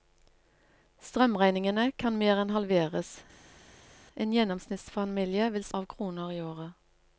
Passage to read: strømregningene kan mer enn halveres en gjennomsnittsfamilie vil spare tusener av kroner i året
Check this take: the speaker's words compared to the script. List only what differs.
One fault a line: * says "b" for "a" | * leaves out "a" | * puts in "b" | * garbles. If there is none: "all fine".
* leaves out "spare tusener"